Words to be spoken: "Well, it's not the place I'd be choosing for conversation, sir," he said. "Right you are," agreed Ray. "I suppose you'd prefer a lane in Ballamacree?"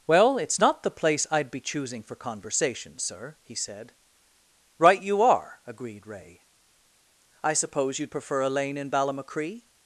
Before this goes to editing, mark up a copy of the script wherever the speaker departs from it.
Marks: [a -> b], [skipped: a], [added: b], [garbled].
"Well, it's not the place I'd be choosing for conversation, sir," he said. "Right you are," agreed Ray. "I suppose you'd prefer a lane in Ballamacree?"